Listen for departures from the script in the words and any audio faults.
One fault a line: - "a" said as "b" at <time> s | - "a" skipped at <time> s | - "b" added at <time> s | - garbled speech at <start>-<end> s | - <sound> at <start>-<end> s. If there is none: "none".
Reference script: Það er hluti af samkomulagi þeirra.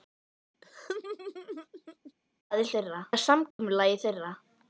- laugh at 0.6-2.1 s
- "hluti" said as "þeirra" at 2.8 s
- dropout at 3.5-3.6 s